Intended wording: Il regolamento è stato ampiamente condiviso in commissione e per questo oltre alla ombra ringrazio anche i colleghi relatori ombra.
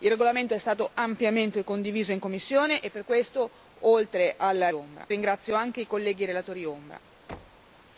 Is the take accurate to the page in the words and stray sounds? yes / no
no